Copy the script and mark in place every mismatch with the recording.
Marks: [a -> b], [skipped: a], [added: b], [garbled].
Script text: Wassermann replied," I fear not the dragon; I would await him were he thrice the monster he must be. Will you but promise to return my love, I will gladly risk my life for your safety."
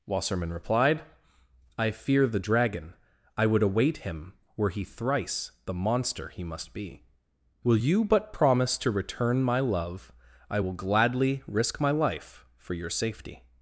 Wassermann replied," I fear [skipped: not] the dragon; I would await him were he thrice the monster he must be. Will you but promise to return my love, I will gladly risk my life for your safety."